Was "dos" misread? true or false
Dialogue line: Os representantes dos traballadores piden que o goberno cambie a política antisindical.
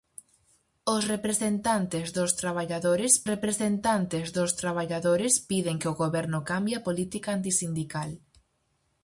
false